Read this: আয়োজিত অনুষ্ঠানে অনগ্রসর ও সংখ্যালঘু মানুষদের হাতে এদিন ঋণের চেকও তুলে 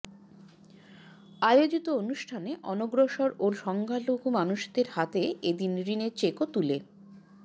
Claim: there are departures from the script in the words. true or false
false